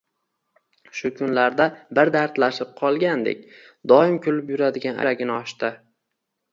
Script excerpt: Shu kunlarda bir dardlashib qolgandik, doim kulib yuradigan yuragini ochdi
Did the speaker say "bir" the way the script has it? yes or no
yes